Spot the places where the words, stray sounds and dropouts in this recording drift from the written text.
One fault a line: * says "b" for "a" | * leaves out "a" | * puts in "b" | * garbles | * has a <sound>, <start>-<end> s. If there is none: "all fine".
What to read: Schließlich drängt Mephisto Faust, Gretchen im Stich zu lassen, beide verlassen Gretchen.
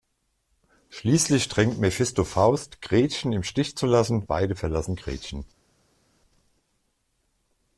all fine